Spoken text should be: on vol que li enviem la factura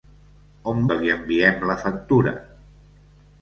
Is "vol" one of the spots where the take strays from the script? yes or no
yes